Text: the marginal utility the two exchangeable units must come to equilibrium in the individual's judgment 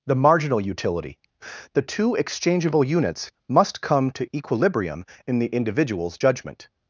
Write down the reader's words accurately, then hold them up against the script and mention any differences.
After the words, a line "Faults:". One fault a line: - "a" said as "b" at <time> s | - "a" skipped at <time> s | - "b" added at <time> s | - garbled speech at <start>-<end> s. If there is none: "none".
the marginal utility the two exchangeable units must come to equilibrium in the individual's judgment
Faults:
none